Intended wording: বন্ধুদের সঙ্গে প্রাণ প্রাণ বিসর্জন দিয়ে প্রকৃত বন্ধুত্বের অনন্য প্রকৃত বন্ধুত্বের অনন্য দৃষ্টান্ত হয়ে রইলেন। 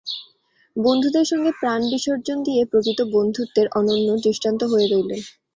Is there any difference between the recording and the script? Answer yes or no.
yes